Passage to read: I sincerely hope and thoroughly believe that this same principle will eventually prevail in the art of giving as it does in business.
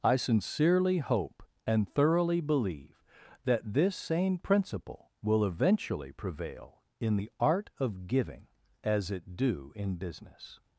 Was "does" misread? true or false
true